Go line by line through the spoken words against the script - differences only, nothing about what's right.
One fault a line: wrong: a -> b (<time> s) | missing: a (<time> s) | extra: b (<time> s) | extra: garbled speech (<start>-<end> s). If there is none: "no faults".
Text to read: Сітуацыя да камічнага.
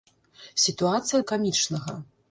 no faults